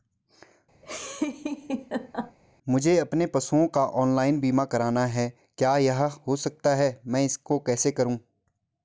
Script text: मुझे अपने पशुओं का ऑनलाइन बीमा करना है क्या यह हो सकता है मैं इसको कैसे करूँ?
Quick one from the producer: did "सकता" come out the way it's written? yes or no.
yes